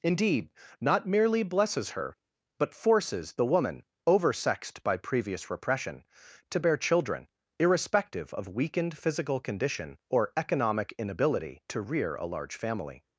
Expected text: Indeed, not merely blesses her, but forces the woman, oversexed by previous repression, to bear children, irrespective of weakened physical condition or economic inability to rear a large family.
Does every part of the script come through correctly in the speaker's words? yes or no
yes